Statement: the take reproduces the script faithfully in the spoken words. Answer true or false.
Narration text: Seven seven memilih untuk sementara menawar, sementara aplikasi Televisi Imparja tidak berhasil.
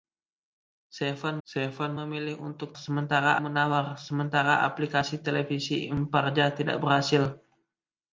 true